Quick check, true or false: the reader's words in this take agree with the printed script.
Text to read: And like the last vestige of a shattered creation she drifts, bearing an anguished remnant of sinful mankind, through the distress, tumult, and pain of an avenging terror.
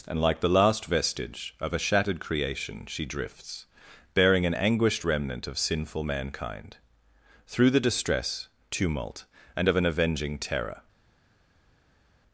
false